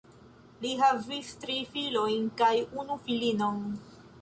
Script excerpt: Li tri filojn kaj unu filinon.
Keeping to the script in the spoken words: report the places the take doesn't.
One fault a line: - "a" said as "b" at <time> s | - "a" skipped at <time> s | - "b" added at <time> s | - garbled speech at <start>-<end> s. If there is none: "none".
- "havis" added at 0.8 s